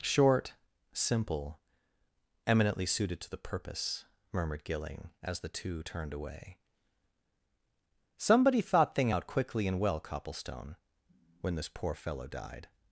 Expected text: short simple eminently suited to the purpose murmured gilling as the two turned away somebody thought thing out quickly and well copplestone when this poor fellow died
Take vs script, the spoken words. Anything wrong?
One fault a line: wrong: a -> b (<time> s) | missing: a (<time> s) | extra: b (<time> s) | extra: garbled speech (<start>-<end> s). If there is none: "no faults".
no faults